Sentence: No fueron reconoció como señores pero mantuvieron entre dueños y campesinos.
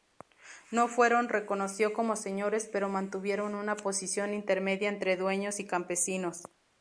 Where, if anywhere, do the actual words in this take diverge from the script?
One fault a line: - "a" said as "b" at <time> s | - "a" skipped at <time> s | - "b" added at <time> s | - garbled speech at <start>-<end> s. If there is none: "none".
- "una posición intermedia" added at 3.5 s